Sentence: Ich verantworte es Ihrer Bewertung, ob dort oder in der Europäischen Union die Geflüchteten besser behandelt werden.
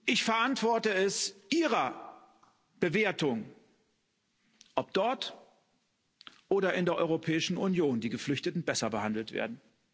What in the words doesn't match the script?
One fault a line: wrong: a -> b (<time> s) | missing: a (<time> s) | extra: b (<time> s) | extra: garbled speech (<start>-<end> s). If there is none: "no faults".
no faults